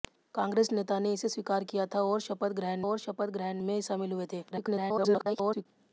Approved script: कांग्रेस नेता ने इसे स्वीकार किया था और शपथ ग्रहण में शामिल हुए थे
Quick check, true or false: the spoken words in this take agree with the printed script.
false